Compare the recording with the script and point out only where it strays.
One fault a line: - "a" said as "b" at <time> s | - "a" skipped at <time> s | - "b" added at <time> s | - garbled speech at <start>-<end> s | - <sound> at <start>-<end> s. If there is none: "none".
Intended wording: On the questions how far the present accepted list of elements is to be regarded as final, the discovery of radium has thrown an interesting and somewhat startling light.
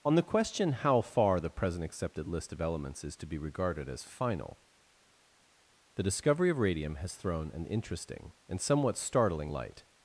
- "questions" said as "question" at 0.2 s